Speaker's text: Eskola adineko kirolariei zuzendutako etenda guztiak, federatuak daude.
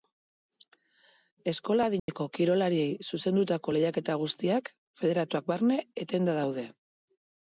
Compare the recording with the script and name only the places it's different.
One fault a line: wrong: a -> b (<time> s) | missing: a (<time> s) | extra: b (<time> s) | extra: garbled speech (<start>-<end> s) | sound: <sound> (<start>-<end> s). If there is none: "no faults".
sound: dropout (2.0-2.1 s)
wrong: etenda -> lehiaketa (3.8 s)
extra: barne etenda (5.5 s)